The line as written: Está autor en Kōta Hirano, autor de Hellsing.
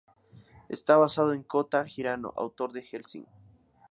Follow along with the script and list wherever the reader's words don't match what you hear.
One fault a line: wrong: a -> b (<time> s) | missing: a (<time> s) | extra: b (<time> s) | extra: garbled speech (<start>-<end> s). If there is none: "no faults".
wrong: autor -> basado (1.0 s)